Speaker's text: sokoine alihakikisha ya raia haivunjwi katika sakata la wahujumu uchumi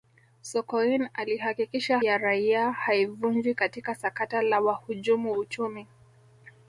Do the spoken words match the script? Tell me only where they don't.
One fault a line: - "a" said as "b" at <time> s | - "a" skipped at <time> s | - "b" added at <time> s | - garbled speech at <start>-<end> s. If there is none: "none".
none